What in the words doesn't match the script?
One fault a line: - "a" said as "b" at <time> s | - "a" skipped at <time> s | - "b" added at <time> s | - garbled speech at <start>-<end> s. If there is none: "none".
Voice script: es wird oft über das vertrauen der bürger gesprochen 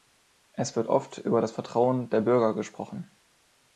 none